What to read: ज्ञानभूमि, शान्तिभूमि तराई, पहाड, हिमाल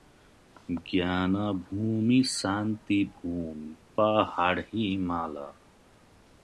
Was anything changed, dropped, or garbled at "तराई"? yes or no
yes